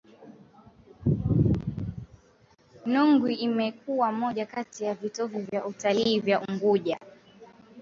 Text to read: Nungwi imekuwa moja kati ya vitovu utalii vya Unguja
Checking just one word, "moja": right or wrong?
right